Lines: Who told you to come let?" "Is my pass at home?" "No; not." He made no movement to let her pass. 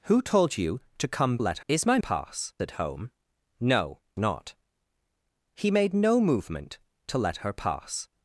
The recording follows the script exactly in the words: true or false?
true